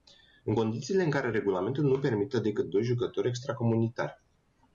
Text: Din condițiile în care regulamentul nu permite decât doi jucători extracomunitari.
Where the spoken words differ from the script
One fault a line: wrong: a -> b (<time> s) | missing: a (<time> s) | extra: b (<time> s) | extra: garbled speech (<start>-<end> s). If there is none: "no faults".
wrong: Din -> În (0.4 s)